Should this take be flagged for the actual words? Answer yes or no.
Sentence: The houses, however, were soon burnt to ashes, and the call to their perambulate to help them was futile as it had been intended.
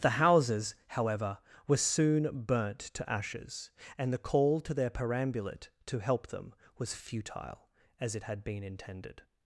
no